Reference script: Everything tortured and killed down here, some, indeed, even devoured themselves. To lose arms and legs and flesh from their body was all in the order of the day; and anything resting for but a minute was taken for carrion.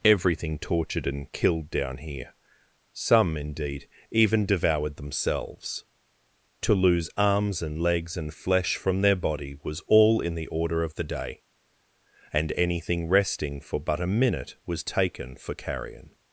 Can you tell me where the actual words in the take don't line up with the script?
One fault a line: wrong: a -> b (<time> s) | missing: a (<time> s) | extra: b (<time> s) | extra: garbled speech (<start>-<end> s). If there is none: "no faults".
no faults